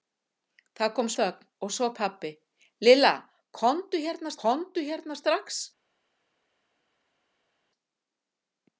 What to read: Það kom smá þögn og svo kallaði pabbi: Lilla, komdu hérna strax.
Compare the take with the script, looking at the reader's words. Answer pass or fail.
fail